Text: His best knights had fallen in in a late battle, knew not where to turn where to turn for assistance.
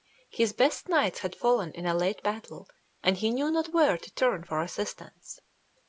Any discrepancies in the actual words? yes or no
yes